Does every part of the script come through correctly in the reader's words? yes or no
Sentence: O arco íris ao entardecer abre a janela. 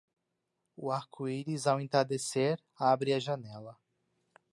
yes